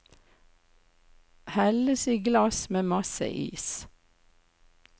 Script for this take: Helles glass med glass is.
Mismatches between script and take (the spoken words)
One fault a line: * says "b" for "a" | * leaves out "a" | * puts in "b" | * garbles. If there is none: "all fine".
* puts in "i"
* says "masse" for "glass"